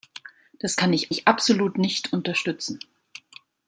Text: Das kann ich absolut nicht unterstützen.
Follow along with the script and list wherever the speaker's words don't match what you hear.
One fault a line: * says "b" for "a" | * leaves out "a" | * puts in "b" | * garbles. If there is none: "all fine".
* puts in "ich"